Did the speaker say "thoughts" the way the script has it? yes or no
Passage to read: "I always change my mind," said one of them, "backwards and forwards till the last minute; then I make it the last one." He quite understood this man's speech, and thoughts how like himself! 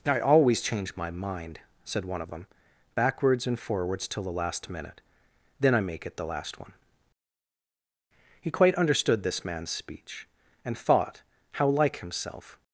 no